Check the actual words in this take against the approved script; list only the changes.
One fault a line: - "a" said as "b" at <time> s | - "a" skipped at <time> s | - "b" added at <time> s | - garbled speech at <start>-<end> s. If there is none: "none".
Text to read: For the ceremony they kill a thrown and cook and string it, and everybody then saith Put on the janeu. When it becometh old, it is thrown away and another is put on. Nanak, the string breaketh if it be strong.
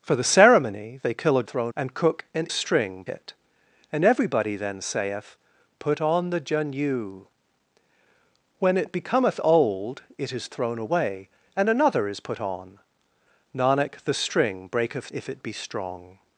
none